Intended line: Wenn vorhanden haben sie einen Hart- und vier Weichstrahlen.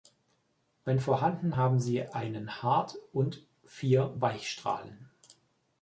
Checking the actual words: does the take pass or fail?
pass